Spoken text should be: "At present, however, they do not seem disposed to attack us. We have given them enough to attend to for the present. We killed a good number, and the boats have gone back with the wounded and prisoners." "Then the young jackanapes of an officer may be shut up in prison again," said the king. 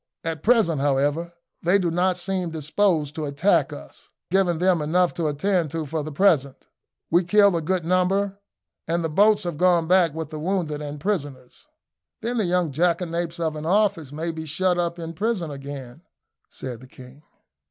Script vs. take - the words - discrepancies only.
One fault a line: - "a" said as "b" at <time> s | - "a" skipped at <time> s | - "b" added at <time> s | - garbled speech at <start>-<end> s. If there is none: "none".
- "We have" skipped at 4.1 s